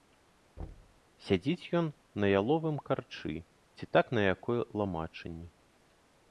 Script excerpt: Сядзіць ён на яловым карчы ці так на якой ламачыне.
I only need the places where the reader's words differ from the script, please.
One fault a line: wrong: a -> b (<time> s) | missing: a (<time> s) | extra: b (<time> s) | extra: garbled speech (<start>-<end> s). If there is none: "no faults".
no faults